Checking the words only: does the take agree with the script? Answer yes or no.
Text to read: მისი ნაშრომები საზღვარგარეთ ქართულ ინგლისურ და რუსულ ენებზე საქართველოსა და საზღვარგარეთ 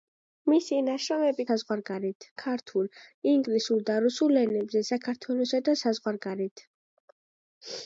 yes